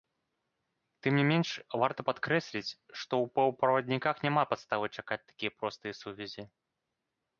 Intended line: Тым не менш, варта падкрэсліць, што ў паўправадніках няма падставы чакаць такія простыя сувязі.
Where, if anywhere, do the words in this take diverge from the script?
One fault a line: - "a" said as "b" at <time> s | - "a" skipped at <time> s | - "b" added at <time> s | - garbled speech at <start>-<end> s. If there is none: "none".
none